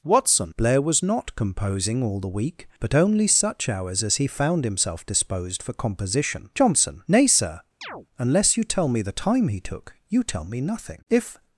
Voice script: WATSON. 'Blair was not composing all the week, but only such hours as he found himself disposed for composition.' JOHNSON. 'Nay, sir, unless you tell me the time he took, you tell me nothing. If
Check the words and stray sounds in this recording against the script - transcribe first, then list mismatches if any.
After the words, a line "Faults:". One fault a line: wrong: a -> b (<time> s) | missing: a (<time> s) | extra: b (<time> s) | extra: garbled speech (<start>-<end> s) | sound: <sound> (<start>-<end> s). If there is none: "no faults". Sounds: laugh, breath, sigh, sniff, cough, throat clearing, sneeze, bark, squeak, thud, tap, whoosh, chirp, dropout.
WATSON. 'Blair was not composing all the week, but only such hours as he found himself disposed for composition.' JOHNSON. 'Nay, sir, unless you tell me the time he took, you tell me nothing. If
Faults:
sound: chirp (7.8-8.1 s)